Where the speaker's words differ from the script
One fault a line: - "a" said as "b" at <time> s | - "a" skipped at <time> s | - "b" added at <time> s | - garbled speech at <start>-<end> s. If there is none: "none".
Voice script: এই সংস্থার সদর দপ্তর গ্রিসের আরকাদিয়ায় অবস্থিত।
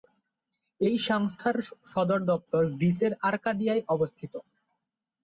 none